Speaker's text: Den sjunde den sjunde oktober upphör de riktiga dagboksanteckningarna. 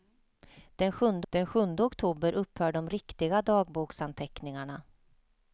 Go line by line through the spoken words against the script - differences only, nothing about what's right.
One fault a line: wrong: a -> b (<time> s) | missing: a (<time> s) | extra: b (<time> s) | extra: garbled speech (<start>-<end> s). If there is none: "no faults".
no faults